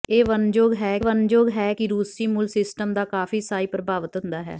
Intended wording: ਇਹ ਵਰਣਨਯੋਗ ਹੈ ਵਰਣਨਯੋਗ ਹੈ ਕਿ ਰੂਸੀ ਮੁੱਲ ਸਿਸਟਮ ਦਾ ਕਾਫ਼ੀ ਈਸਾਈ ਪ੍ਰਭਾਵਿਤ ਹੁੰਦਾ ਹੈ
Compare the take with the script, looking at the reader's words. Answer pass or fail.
pass